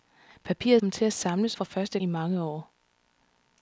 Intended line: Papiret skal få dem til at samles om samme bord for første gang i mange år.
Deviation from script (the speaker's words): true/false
true